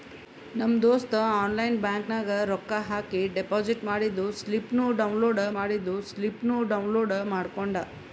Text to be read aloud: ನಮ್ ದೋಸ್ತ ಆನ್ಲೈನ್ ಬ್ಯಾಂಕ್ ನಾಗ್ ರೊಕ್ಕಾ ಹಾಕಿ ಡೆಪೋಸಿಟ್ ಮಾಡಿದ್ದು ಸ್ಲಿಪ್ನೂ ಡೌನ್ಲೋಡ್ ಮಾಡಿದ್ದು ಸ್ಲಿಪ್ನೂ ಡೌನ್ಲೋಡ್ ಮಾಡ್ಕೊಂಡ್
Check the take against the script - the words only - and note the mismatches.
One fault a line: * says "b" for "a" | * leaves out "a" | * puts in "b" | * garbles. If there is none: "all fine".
all fine